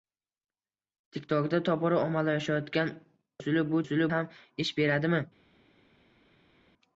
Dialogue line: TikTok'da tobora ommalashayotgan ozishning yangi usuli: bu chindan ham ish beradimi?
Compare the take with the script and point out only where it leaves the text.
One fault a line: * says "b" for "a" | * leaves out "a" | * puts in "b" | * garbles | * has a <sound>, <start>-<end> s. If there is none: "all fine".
* leaves out "ozishning yangi"
* says "usuli" for "chindan"